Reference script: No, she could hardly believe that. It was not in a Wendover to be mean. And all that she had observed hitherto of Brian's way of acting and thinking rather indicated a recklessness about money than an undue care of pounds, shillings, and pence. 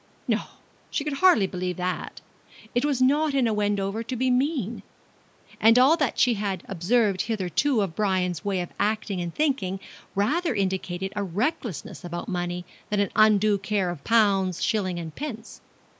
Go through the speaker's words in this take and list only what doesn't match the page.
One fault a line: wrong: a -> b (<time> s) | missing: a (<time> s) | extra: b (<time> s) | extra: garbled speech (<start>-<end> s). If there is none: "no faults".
no faults